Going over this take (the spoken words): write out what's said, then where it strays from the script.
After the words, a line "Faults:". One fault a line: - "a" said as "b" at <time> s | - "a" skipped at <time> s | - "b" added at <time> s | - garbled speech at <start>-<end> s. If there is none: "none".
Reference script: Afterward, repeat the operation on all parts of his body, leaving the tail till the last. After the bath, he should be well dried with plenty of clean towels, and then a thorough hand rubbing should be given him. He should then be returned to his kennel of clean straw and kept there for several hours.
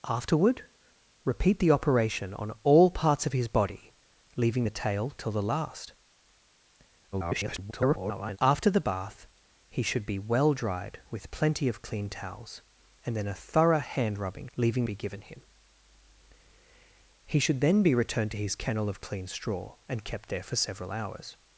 Afterward, repeat the operation on all parts of his body, leaving the tail till the last. [garbled] After the bath, he should be well dried with plenty of clean towels, and then a thorough hand rubbing leaving be given him. He should then be returned to his kennel of clean straw and kept there for several hours.
Faults:
- garbled speech at 7.1-8.4 s
- "should" said as "leaving" at 14.6 s